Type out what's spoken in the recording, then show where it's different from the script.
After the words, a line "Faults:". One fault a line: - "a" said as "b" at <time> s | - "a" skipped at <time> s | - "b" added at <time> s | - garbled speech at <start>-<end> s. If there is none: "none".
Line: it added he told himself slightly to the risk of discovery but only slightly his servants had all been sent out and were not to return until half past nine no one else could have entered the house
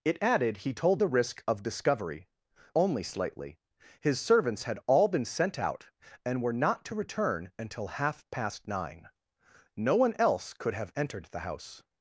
it added he told the risk of discovery only slightly his servants had all been sent out and were not to return until half past nine no one else could have entered the house
Faults:
- "himself slightly to" skipped at 1.0 s
- "but" skipped at 2.3 s